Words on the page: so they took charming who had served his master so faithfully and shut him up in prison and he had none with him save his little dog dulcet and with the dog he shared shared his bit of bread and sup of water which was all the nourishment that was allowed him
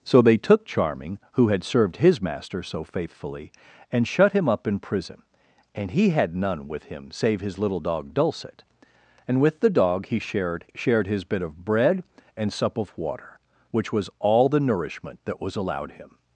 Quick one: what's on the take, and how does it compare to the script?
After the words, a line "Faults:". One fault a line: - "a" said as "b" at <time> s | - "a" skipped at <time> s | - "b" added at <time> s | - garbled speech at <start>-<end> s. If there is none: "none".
so they took charming who had served his master so faithfully and shut him up in prison and he had none with him save his little dog dulcet and with the dog he shared shared his bit of bread and sup of water which was all the nourishment that was allowed him
Faults:
none